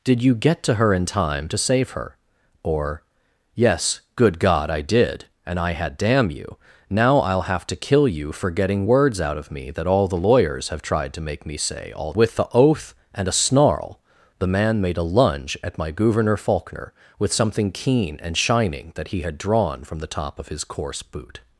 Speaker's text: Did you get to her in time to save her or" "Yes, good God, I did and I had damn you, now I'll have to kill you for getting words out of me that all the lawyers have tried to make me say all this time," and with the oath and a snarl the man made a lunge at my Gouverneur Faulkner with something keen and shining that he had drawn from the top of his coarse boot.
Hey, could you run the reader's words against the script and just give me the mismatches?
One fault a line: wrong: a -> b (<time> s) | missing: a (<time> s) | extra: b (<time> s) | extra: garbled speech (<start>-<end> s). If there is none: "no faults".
missing: this time and (12.1 s)